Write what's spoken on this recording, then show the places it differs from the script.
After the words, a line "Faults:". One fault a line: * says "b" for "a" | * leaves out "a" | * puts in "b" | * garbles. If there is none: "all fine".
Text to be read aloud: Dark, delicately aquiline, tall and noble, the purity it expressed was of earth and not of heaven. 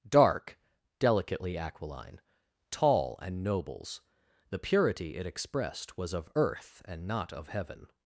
Dark, delicately aquiline, tall and nobles, the purity it expressed was of earth and not of heaven.
Faults:
* says "nobles" for "noble"